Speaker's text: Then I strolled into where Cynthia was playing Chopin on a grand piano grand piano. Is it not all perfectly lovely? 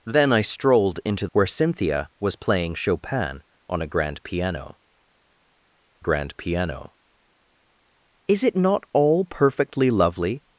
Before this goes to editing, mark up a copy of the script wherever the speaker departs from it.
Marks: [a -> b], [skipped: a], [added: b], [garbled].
Then I strolled into where Cynthia was playing Chopin on a grand piano grand piano. Is it not all perfectly lovely?